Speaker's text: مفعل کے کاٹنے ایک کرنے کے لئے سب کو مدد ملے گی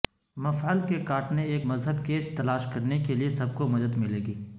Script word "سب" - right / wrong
right